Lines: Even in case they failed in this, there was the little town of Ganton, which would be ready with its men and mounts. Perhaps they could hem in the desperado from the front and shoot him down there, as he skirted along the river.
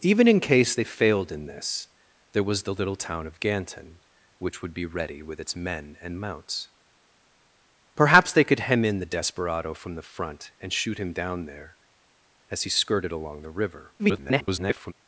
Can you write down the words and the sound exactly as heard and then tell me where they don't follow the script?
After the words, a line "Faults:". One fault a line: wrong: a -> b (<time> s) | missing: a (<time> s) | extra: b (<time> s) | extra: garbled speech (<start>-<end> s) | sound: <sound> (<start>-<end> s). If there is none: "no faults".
Even in case they failed in this, there was the little town of Ganton, which would be ready with its men and mounts. Perhaps they could hem in the desperado from the front and shoot him down there, as he skirted along the river. [garbled]
Faults:
extra: garbled speech (14.0-14.9 s)